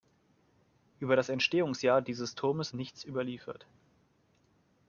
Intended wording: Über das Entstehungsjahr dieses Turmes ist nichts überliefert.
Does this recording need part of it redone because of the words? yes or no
yes